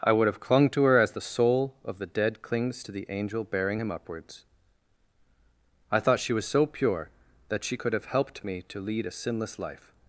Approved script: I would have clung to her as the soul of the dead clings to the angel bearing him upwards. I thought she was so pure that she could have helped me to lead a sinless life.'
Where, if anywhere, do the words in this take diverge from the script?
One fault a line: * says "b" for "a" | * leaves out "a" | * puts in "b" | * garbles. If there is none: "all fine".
all fine